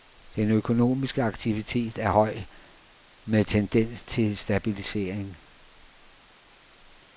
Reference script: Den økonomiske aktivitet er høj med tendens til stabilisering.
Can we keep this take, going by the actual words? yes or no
yes